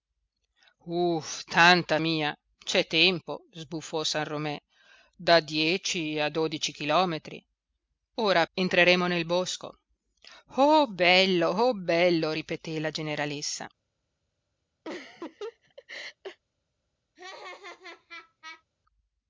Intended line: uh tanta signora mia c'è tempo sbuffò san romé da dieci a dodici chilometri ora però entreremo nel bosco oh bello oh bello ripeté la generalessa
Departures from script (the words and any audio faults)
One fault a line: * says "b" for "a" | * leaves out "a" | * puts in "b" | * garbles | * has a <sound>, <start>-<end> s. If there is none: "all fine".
* leaves out "signora"
* leaves out "però"
* has a laugh, 14.8-16.4 s
* has a laugh, 17.2-18.6 s